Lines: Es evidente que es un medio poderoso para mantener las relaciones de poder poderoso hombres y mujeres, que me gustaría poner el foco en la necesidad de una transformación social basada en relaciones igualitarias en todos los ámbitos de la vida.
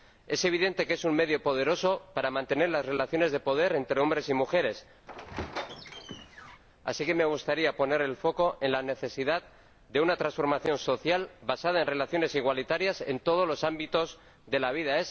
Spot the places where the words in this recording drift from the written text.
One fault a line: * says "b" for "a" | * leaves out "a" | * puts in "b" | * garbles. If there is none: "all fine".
* says "entre" for "poderoso"
* puts in "así"